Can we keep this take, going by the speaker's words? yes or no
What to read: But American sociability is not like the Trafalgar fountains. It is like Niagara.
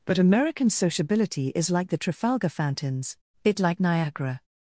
no